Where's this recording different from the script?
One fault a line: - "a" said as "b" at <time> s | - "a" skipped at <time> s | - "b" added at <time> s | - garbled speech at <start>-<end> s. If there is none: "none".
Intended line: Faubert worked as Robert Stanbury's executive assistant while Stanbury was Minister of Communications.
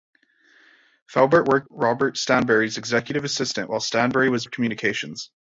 - "as" skipped at 1.7 s
- "Minister" skipped at 4.5 s